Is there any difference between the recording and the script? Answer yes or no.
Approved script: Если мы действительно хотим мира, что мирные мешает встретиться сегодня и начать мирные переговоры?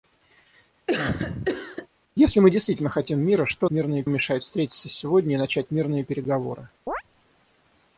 no